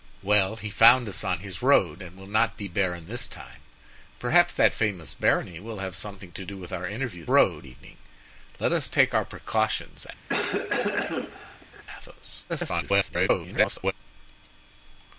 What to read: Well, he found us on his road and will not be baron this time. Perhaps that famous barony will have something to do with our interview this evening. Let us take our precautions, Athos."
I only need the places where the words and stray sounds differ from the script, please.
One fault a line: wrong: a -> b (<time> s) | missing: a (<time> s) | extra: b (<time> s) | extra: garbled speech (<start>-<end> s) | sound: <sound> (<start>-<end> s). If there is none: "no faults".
wrong: this -> road (7.3 s)
sound: cough (10.3-11.8 s)
extra: garbled speech (12.5-13.9 s)